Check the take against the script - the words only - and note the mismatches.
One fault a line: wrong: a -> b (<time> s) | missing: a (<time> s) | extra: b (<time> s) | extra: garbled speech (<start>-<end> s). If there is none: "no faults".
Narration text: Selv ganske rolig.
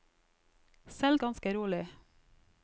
no faults